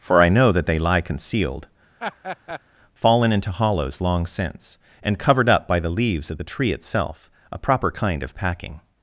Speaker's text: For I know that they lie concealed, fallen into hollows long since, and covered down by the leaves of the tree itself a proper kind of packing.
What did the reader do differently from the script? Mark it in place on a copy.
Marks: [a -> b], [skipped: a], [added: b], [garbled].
For I know that they lie concealed, fallen into hollows long since, and covered [down -> up] by the leaves of the tree itself a proper kind of packing.